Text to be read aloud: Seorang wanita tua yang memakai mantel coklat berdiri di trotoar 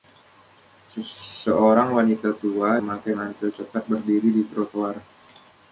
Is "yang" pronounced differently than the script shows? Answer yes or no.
yes